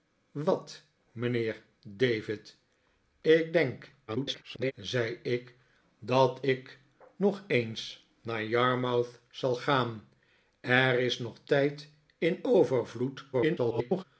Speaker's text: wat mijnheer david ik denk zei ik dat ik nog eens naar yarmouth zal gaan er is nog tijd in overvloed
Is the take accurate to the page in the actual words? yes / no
no